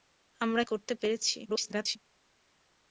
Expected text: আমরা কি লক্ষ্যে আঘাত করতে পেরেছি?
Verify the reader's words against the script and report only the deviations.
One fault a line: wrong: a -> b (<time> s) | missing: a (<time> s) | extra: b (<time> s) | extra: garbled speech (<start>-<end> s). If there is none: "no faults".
missing: কি লক্ষ্যে আঘাত (0.6 s)
extra: garbled speech (1.4-2.0 s)